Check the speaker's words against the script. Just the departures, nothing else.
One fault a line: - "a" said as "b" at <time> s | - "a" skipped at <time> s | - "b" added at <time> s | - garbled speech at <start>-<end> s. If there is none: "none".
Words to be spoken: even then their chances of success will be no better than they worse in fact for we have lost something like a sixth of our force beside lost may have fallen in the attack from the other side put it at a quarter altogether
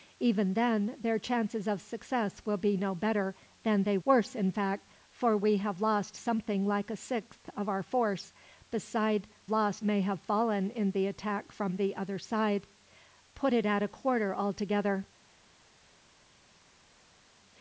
none